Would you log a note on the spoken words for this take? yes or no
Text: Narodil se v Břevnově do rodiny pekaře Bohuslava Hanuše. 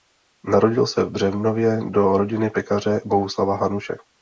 no